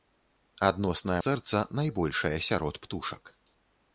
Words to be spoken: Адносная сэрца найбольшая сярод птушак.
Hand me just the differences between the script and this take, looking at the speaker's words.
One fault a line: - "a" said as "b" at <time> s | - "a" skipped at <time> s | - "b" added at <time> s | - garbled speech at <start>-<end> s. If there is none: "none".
none